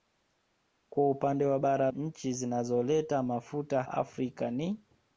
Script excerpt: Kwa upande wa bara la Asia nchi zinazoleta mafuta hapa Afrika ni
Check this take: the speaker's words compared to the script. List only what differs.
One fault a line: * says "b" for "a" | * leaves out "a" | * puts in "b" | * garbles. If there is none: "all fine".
* leaves out "la Asia"
* leaves out "hapa"